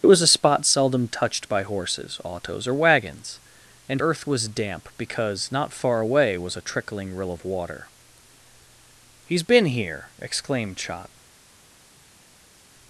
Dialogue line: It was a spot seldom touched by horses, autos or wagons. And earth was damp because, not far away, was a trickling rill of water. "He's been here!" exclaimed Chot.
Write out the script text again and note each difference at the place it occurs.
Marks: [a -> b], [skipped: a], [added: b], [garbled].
It was a spot seldom touched by horses, autos or wagons. And earth was damp because, not far away, was a trickling rill of water. "He's been here!" exclaimed Chot.